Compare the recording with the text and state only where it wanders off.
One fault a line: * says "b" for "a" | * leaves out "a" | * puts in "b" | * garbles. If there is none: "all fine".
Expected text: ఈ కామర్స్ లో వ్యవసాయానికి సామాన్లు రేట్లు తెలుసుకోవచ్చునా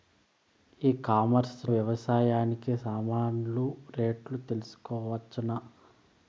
* leaves out "లో"